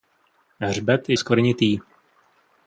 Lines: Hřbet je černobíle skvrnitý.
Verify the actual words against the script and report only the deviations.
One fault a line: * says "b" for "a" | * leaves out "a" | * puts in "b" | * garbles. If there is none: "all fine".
* leaves out "černobíle"